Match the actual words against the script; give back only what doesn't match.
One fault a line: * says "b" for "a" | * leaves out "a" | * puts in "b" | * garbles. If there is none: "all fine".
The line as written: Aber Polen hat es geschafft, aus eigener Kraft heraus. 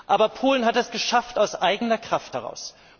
all fine